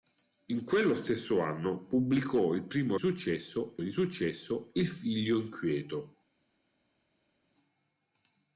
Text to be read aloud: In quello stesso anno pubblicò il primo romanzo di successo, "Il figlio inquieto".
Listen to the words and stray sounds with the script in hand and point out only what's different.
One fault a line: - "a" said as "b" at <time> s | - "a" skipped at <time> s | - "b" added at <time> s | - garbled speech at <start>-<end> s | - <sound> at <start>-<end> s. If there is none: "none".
- "romanzo" said as "successo" at 2.9 s